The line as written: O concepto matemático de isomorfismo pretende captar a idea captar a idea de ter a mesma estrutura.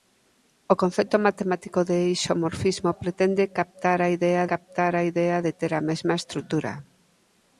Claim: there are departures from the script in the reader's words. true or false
false